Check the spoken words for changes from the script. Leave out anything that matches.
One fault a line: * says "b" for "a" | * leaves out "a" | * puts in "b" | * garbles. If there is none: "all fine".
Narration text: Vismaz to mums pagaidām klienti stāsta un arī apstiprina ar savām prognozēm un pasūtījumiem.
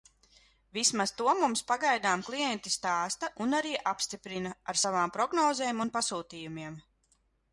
all fine